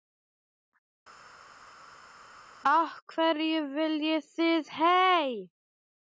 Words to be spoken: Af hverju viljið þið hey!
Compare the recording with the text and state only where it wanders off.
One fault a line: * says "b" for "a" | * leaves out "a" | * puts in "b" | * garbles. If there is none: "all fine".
all fine